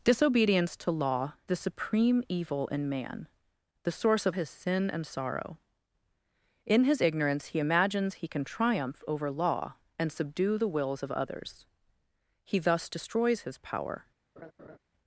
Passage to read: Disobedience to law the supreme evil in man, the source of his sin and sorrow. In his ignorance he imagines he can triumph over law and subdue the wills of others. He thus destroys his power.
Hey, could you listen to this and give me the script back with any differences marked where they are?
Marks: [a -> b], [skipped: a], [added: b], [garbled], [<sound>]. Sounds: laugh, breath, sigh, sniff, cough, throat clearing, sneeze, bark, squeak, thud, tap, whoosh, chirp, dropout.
Disobedience to law the supreme evil in man, the source of his sin and sorrow. In his ignorance he imagines he can triumph over law and subdue the wills of others. He thus destroys his power. [laugh]